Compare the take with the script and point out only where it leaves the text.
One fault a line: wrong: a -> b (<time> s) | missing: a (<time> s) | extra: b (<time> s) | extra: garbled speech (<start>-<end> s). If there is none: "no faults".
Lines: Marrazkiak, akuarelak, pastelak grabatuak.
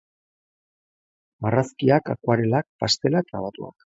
no faults